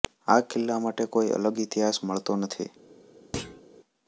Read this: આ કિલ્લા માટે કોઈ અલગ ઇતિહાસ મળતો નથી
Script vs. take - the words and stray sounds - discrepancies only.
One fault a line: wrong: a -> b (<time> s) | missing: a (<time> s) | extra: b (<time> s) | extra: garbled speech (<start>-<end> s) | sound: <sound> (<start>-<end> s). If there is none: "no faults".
sound: thud (3.3-3.6 s)